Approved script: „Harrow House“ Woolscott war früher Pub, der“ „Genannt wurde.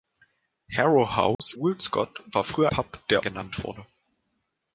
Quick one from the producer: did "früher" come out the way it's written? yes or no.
yes